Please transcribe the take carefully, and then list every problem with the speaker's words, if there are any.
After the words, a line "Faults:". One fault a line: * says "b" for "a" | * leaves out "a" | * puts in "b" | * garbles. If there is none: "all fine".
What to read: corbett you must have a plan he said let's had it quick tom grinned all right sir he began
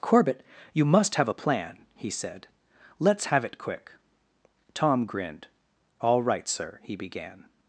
corbett you must have a plan he said let's have it quick tom grinned all right sir he began
Faults:
* says "have" for "had"